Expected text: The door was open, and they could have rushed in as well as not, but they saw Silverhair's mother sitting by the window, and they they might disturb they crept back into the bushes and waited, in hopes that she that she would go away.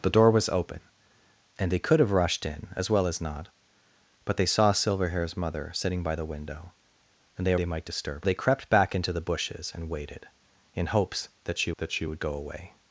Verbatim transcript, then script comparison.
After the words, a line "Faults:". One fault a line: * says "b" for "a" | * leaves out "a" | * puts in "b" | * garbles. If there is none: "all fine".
The door was open, and they could have rushed in as well as not, but they saw Silverhair's mother sitting by the window, and they they might disturb they crept back into the bushes and waited, in hopes that she that she would go away.
Faults:
all fine